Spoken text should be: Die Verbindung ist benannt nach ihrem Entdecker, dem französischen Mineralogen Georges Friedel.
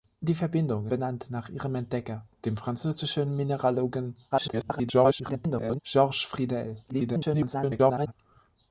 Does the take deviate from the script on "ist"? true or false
true